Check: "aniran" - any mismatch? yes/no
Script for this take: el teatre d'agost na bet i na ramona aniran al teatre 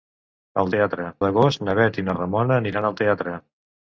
no